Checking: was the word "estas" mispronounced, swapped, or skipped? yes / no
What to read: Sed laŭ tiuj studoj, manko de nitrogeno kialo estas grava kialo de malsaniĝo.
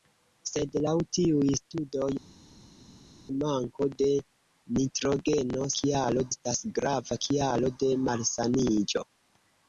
no